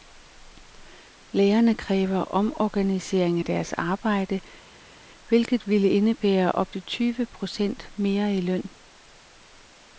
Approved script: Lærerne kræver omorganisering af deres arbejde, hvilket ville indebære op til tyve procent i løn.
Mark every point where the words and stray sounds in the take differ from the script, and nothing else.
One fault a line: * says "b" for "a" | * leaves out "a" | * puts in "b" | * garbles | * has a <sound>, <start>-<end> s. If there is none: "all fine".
* puts in "mere"